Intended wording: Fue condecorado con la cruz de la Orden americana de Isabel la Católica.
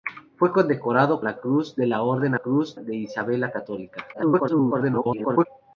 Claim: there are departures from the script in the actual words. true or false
true